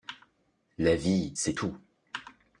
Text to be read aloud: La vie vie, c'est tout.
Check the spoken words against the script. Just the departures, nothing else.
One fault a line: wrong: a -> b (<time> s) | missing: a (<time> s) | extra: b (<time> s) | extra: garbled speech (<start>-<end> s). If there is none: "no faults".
missing: vie (1.4 s)